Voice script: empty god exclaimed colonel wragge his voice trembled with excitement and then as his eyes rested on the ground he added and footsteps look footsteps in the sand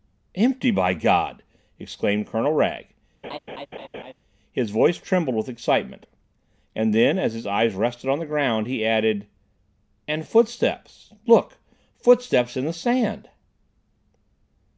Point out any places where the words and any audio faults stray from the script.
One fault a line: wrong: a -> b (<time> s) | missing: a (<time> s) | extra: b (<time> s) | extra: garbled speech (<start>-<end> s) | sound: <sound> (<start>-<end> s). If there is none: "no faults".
extra: by (0.7 s)
sound: laugh (3.2-4.1 s)